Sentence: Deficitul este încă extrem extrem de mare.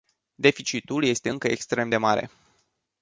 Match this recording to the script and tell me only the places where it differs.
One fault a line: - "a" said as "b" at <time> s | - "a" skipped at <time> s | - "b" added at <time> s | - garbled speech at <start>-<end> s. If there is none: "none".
- "extrem" skipped at 1.9 s